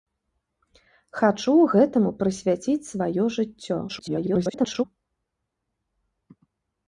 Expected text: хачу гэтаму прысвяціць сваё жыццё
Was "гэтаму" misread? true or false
false